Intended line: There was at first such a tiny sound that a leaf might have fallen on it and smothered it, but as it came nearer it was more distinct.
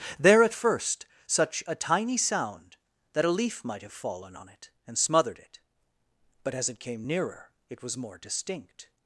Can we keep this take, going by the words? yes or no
no